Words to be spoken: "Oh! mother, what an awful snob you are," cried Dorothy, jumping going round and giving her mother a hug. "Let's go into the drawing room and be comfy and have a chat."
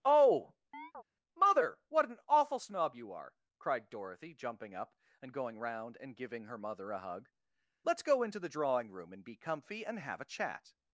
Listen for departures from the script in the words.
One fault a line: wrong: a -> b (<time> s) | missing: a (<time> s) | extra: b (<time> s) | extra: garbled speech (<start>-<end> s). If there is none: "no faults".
extra: up and (4.7 s)